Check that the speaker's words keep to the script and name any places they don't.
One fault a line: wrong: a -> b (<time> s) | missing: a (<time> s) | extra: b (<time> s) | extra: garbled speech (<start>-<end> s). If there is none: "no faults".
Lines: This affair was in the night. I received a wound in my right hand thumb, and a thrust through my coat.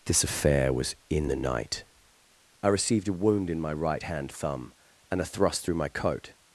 no faults